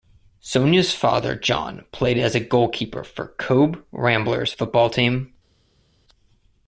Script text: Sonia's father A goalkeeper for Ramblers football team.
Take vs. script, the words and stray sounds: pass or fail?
fail